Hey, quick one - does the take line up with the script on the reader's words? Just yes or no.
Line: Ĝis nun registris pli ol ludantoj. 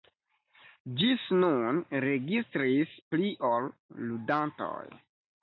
yes